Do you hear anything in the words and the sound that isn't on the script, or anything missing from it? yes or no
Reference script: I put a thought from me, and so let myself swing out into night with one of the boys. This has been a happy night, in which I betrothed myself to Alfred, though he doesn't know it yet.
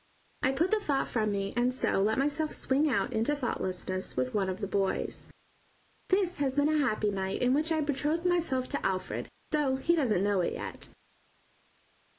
yes